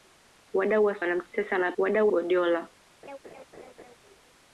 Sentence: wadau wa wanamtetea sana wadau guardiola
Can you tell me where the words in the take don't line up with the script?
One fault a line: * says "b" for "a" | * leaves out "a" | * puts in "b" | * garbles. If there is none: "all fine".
all fine